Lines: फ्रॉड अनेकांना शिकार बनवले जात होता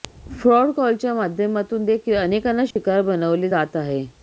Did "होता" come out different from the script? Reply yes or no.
yes